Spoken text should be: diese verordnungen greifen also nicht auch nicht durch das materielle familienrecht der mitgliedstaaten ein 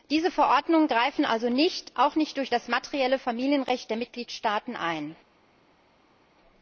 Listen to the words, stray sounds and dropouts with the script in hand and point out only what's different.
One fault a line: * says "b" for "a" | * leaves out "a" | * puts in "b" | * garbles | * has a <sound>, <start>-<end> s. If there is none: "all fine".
all fine